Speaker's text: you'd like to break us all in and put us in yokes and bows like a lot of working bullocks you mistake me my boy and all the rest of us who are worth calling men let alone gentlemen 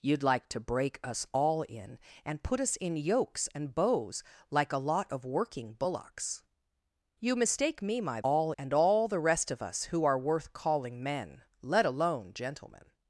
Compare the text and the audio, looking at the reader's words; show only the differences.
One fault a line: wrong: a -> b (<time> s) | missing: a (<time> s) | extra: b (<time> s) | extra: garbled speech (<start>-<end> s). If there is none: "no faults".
wrong: boy -> all (8.2 s)